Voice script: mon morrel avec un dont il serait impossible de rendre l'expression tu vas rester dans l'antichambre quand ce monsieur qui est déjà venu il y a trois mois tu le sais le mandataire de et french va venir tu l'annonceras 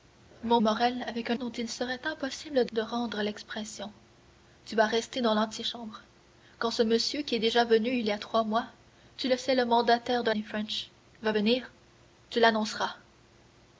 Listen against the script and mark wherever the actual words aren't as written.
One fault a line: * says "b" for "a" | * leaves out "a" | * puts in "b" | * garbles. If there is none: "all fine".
all fine